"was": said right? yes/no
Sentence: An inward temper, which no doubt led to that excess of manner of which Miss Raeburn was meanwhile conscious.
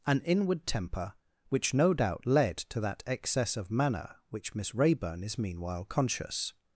no